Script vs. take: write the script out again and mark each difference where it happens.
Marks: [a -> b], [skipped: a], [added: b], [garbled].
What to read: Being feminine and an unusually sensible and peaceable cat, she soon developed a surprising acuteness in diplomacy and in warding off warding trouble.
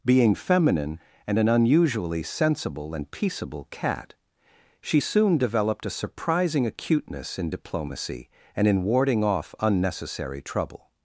Being feminine and an unusually sensible and peaceable cat, she soon developed a surprising acuteness in diplomacy and in warding off [warding -> unnecessary] trouble.